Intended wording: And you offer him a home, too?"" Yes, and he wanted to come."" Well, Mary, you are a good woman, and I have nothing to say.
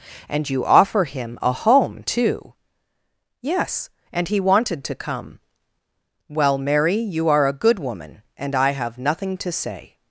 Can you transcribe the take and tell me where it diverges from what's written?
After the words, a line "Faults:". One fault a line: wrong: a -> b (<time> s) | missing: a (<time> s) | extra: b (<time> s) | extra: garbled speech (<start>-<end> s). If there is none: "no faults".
And you offer him a home, too?"" Yes, and he wanted to come."" Well, Mary, you are a good woman, and I have nothing to say.
Faults:
no faults